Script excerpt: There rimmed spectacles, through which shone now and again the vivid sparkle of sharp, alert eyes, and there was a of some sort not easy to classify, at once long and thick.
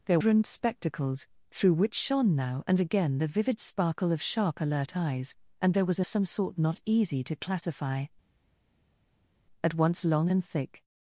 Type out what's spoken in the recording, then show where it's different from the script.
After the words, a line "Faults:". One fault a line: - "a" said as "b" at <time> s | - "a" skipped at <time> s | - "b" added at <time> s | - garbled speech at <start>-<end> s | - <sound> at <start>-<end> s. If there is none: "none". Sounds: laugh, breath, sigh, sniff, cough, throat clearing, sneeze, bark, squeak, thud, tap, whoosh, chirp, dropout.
There rimmed spectacles, through which shone now and again the vivid sparkle of sharp, alert eyes, and there was a of some sort not easy to classify, at once long and thick.
Faults:
none